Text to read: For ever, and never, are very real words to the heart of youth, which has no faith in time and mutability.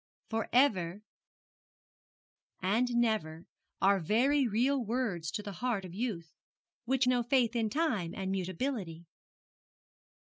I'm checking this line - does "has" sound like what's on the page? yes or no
no